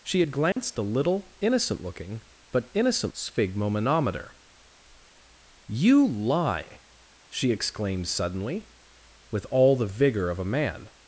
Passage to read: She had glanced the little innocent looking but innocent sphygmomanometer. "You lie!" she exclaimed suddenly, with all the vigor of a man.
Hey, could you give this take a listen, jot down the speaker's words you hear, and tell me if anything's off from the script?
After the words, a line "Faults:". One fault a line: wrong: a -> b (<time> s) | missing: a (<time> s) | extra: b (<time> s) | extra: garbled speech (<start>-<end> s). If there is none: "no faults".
She had glanced the little innocent looking but innocent sphygmomanometer. "You lie!" she exclaimed suddenly, with all the vigor of a man.
Faults:
no faults